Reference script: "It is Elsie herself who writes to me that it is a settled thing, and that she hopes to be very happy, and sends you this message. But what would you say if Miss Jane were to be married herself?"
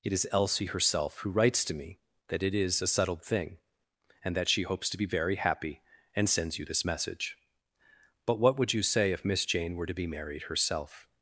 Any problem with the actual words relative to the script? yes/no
no